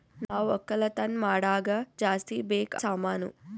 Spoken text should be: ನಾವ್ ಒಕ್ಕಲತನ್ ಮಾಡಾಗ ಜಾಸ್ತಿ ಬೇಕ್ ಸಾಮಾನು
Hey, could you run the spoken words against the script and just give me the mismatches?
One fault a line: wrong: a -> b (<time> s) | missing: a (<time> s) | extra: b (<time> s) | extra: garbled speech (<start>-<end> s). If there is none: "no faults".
no faults